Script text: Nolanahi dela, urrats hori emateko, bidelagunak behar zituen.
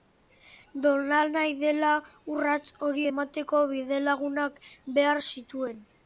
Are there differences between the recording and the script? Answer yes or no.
no